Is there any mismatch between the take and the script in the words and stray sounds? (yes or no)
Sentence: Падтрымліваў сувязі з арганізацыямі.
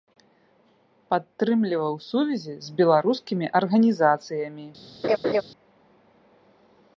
yes